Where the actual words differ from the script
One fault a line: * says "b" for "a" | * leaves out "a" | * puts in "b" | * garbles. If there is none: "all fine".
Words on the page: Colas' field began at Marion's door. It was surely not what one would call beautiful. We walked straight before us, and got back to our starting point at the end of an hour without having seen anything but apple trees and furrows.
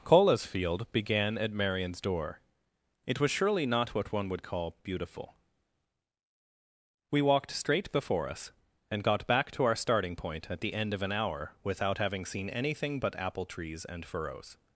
all fine